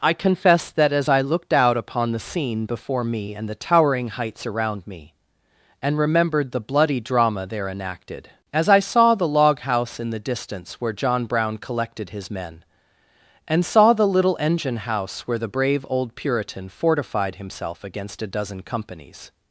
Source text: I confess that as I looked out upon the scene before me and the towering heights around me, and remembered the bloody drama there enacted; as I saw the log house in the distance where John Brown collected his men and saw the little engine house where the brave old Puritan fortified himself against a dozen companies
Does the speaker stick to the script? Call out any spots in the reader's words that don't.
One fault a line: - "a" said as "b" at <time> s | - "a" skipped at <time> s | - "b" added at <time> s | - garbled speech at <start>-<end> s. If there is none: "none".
none